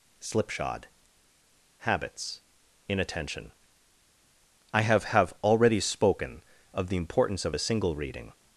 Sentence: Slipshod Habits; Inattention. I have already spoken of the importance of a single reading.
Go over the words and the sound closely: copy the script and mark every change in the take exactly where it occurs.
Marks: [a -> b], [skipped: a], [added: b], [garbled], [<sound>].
Slipshod Habits; Inattention. I have [added: have] already spoken of the importance of a single reading.